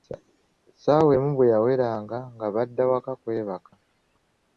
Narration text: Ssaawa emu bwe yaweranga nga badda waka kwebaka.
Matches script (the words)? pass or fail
pass